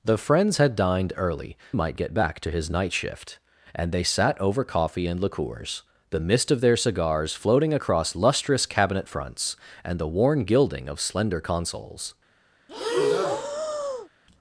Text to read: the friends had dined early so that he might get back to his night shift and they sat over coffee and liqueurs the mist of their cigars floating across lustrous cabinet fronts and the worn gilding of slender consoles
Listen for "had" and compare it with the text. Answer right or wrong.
right